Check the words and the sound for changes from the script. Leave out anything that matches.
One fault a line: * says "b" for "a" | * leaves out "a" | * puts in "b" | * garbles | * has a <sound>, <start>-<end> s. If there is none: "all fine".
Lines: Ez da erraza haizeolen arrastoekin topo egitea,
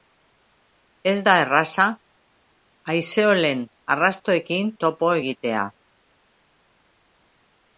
all fine